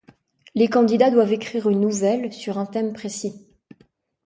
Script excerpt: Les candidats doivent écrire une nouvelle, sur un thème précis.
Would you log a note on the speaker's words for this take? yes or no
no